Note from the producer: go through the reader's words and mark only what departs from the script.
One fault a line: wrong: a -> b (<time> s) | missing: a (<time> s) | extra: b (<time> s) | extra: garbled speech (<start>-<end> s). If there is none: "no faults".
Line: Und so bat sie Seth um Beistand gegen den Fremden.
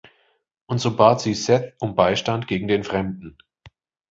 no faults